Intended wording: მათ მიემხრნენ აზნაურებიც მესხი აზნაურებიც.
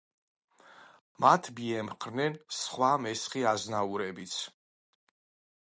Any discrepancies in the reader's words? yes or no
yes